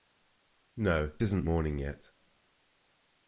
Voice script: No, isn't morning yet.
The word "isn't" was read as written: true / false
true